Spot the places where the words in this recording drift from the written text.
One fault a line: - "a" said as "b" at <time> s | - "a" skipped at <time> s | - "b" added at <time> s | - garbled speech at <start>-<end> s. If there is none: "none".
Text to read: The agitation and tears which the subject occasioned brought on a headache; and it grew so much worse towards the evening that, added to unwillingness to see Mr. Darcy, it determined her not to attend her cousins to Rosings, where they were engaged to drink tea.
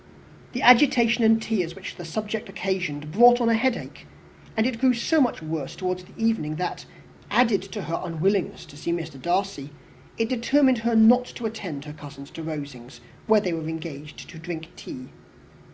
- "her" added at 7.8 s